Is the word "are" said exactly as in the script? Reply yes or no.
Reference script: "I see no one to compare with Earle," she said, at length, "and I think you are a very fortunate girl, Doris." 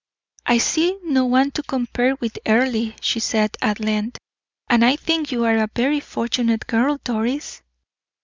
yes